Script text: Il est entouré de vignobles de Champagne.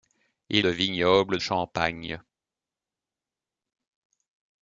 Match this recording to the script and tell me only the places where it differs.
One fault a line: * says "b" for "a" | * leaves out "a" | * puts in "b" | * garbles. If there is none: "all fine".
* leaves out "est entouré"
* leaves out "de"